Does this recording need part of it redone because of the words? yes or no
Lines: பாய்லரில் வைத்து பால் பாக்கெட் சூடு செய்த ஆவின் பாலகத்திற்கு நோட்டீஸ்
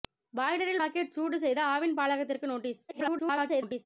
yes